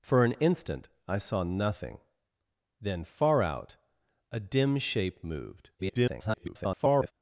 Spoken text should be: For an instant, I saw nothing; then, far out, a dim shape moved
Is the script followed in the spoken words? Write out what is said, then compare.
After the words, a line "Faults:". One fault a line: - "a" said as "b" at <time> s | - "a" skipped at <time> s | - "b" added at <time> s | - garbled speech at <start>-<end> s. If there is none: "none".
For an instant, I saw nothing; then, far out, a dim shape moved [garbled]
Faults:
- garbled speech at 5.8-7.1 s